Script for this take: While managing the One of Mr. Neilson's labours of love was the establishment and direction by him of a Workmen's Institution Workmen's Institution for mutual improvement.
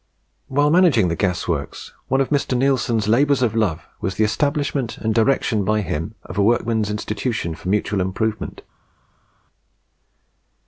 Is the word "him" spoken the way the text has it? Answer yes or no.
yes